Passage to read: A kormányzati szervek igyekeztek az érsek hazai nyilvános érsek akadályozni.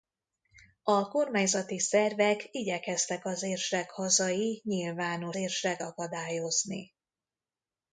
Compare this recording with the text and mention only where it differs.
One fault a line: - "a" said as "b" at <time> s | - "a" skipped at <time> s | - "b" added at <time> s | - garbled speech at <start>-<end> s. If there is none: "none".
none